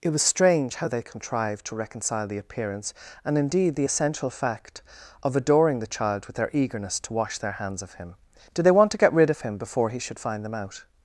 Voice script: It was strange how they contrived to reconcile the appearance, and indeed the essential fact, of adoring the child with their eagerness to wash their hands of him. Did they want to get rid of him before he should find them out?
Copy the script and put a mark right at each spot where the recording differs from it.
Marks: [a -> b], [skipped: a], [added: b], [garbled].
It was strange how they contrived to reconcile the appearance, and indeed the essential fact, of adoring the child with their eagerness to wash their hands of him. Did they want to get rid of him before he should find them out?